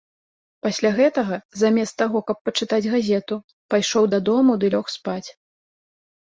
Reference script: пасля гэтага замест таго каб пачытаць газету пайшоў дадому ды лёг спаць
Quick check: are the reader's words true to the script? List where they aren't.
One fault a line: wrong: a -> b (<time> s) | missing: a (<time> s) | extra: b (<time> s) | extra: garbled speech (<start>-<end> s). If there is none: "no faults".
no faults